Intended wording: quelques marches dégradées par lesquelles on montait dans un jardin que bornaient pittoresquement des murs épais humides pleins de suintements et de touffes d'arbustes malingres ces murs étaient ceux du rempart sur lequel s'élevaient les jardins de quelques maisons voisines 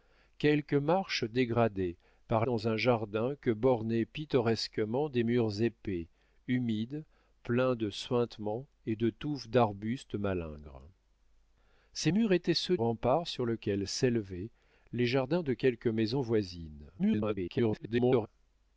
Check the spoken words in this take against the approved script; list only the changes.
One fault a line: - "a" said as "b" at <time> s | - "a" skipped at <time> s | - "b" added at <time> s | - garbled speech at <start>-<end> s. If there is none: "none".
- "lesquelles on montait" skipped at 2.5 s
- "du" skipped at 12.8 s
- garbled speech at 17.0-18.3 s